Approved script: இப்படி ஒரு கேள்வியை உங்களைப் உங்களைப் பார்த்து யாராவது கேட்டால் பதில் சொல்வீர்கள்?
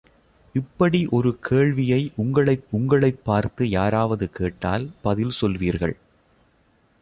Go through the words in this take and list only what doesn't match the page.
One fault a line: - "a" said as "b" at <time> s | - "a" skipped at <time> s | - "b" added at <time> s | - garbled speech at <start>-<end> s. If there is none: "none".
none